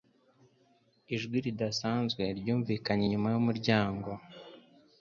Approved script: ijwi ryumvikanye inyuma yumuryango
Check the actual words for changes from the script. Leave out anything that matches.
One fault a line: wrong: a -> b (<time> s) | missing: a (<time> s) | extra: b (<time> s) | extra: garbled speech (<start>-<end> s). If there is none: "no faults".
extra: ridasanzwe (1.4 s)